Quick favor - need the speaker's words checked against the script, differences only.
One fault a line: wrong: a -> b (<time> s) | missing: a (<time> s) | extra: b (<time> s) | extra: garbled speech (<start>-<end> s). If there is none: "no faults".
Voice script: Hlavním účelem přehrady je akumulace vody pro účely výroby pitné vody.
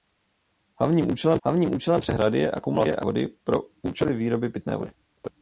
extra: hlavním účelem (1.4 s)